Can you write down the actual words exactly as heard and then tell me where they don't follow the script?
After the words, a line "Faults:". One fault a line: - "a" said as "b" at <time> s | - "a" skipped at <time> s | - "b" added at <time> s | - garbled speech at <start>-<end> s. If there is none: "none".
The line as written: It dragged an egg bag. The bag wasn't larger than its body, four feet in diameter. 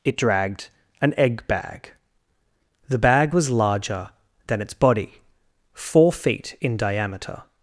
It dragged an egg bag. The bag was larger than its body, four feet in diameter.
Faults:
- "wasn't" said as "was" at 3.3 s